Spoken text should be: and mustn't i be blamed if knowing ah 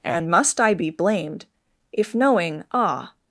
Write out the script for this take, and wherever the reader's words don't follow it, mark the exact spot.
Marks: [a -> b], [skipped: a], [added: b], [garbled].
and [mustn't -> must] i be blamed if knowing ah